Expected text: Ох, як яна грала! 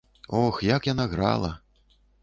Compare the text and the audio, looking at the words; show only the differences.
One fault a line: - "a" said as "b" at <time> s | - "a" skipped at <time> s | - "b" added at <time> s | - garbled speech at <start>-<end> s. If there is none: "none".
none